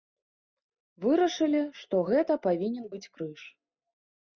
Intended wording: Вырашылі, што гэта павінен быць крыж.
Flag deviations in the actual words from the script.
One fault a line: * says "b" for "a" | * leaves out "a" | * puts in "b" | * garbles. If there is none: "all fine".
all fine